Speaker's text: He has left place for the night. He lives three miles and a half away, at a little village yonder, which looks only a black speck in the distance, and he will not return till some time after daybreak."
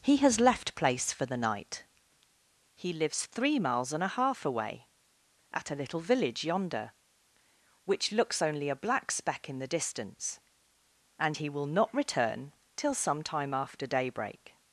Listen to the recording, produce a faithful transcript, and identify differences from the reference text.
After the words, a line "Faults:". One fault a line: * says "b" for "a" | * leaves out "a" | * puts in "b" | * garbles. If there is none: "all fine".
He has left place for the night. He lives three miles and a half away, at a little village yonder, which looks only a black speck in the distance, and he will not return till some time after daybreak."
Faults:
all fine